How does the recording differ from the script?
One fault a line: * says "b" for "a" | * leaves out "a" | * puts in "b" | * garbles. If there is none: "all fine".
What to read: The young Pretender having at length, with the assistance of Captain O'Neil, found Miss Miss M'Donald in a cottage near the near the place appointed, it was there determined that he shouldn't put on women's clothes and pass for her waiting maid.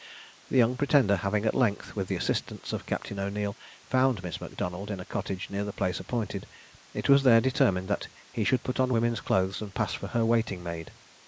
* leaves out "Miss"
* leaves out "near the"
* says "should" for "shouldn't"